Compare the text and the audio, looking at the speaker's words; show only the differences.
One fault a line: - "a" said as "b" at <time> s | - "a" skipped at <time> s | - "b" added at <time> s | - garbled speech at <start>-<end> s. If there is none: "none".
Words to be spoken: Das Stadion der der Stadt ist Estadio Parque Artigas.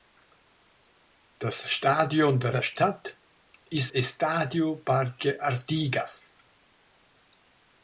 none